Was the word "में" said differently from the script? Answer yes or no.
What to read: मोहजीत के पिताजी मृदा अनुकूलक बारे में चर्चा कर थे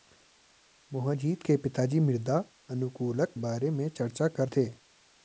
no